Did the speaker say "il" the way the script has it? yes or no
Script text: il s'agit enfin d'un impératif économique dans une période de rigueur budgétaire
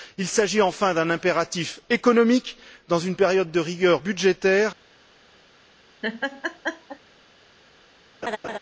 yes